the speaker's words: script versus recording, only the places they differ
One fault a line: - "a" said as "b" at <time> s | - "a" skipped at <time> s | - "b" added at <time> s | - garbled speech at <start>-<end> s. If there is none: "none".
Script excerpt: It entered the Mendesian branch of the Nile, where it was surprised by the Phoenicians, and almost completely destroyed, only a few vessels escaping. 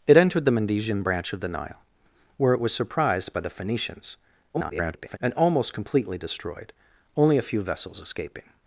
- garbled speech at 4.5-5.2 s